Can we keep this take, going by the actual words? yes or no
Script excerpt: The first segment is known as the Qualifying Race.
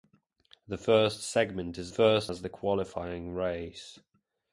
no